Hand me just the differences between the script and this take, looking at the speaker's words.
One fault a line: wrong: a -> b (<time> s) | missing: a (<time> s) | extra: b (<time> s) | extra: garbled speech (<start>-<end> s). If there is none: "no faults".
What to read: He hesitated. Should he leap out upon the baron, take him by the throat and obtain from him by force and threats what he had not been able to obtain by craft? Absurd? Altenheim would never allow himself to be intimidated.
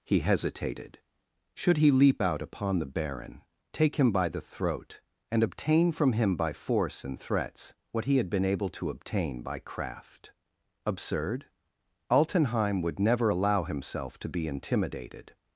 missing: not (8.3 s)